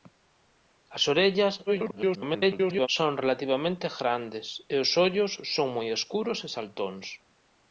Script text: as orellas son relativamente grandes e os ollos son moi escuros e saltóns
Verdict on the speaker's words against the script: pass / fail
fail